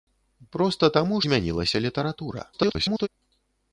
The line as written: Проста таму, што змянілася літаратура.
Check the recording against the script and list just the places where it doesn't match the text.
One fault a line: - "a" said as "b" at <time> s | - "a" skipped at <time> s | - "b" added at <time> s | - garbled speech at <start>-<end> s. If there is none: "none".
- "што" skipped at 1.2 s
- garbled speech at 2.5-3.1 s